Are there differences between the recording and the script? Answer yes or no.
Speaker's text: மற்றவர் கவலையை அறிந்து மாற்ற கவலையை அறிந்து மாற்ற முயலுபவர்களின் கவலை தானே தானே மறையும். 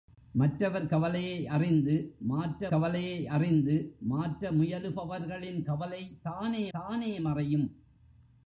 no